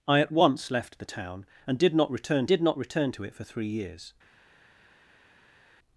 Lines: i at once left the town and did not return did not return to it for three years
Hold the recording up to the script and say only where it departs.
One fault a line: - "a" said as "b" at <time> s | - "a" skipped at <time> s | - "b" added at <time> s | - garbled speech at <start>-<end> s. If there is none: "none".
none